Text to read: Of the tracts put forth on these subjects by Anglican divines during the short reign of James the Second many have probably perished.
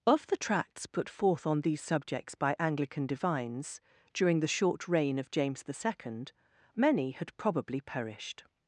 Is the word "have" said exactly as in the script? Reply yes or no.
no